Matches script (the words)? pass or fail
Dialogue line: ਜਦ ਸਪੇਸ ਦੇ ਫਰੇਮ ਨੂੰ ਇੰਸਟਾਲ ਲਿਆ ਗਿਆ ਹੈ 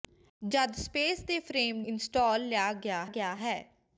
fail